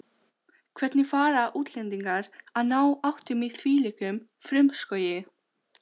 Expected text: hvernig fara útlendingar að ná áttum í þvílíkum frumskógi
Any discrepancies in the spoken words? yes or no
no